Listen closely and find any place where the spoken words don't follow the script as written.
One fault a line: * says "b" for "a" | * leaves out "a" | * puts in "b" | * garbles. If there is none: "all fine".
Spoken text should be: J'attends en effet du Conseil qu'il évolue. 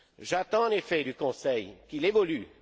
all fine